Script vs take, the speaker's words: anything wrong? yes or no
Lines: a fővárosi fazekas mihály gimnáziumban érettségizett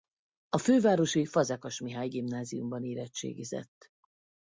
no